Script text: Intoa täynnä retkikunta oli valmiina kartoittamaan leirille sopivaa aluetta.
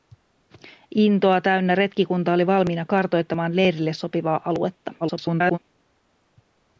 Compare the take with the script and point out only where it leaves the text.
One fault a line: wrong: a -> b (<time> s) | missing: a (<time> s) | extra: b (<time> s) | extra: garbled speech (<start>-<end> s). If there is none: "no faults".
extra: garbled speech (5.0-5.6 s)